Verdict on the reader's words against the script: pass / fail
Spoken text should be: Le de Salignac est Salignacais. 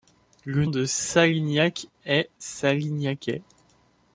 pass